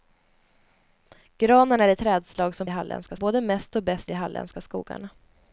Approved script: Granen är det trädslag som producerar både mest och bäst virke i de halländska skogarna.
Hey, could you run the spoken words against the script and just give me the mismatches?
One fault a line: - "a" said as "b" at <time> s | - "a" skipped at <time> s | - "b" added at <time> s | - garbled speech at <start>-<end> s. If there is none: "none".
- "producerar" said as "halländska" at 2.7 s
- "virke" skipped at 4.1 s